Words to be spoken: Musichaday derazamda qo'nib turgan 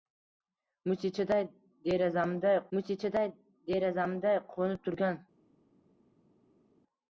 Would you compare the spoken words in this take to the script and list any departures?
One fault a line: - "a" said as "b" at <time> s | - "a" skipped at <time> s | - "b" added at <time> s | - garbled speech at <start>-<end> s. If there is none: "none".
- "musichaday derazamda" added at 2.8 s